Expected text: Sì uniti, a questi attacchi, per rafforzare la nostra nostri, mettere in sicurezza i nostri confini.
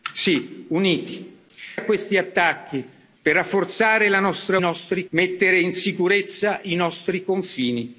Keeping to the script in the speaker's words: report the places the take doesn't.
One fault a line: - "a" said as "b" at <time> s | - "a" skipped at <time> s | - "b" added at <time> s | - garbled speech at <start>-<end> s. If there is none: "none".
none